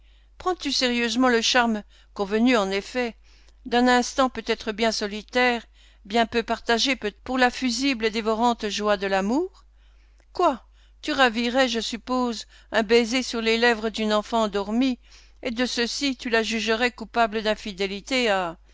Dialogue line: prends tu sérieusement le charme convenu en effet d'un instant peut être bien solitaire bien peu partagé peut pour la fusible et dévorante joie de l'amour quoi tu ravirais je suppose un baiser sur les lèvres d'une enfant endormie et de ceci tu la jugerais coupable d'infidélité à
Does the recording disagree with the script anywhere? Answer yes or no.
no